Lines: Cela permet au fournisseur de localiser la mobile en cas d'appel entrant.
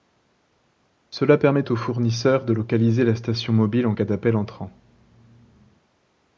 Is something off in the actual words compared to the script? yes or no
yes